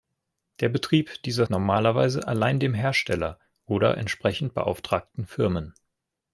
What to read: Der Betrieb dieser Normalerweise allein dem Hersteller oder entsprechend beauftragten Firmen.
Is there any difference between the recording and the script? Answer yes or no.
no